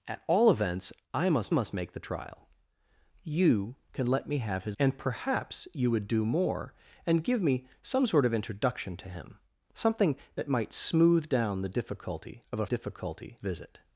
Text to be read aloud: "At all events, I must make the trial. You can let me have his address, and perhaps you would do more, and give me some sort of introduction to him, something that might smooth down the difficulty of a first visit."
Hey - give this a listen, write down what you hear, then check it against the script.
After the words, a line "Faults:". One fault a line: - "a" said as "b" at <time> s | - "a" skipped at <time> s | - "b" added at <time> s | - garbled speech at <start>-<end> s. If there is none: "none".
"At all events, I must must make the trial. You can let me have his and perhaps you would do more, and give me some sort of introduction to him, something that might smooth down the difficulty of a difficulty visit."
Faults:
- "must" added at 1.5 s
- "address" skipped at 4.8 s
- "first" said as "difficulty" at 12.6 s